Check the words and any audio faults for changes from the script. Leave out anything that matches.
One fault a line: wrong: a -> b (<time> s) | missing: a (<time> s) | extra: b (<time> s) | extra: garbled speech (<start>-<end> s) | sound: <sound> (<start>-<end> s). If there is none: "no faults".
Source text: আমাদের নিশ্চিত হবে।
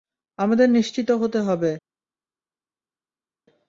extra: হতে (1.1 s)